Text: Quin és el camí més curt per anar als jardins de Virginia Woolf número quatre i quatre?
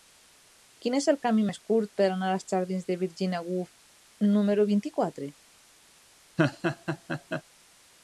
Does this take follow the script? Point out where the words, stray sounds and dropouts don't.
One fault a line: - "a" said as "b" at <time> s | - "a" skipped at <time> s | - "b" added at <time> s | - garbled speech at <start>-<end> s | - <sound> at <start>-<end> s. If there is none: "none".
- "quatre" said as "vint" at 4.7 s
- laugh at 6.4-7.4 s